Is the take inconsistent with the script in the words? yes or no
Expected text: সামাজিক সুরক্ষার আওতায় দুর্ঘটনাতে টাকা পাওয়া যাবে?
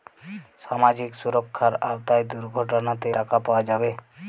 no